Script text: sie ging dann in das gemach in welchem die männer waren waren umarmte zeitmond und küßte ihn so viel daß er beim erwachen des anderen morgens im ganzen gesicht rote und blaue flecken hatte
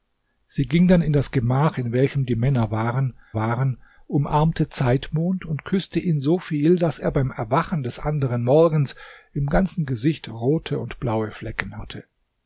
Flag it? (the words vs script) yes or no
no